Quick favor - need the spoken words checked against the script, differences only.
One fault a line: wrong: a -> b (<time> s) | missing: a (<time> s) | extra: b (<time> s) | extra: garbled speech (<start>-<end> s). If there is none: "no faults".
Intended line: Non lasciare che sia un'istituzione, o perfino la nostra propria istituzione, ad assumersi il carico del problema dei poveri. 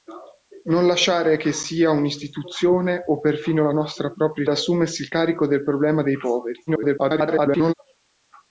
missing: istituzione ad (4.5 s)
extra: garbled speech (6.7-7.7 s)